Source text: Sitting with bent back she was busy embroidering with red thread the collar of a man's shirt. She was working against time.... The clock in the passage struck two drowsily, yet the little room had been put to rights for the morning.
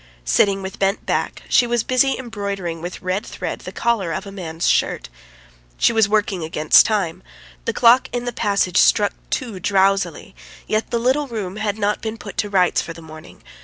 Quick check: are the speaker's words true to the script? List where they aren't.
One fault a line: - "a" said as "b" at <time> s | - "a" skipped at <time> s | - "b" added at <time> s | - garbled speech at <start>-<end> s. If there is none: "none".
- "not" added at 11.8 s